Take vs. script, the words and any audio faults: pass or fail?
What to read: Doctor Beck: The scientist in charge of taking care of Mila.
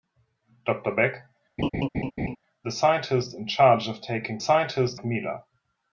fail